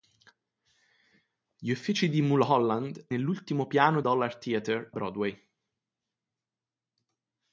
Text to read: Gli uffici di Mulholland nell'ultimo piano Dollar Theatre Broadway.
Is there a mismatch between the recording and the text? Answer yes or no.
no